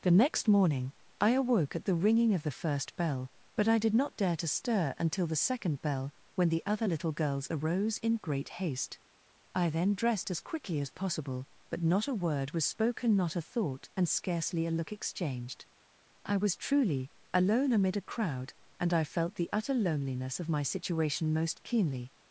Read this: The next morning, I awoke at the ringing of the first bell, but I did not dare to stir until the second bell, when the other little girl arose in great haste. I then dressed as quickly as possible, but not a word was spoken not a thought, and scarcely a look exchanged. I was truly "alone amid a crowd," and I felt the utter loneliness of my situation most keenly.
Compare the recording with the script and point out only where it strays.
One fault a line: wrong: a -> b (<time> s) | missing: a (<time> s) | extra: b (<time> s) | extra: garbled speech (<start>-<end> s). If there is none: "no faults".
wrong: girl -> girls (7.1 s)